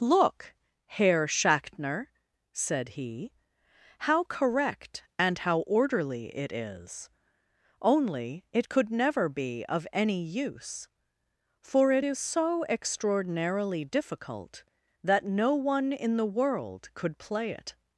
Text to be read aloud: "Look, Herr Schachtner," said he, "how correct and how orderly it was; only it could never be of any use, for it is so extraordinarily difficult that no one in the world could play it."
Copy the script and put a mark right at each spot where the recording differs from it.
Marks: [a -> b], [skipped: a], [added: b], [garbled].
"Look, Herr Schachtner," said he, "how correct and how orderly it [was; -> is] only it could never be of any use, for it is so extraordinarily difficult that no one in the world could play it."